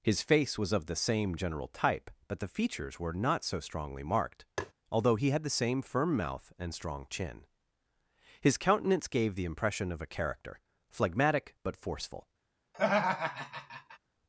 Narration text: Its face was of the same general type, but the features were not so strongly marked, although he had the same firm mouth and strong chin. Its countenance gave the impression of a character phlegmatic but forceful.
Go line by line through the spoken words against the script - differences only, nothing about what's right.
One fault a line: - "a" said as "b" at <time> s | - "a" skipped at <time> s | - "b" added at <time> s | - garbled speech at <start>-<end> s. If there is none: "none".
- "Its" said as "His" at 0.0 s
- "Its" said as "His" at 8.4 s